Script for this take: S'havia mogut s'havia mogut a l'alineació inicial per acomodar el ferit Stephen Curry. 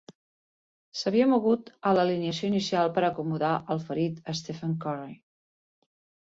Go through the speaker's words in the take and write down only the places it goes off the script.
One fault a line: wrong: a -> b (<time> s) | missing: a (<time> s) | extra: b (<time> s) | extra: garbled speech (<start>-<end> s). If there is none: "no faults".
missing: s'havia mogut (1.7 s)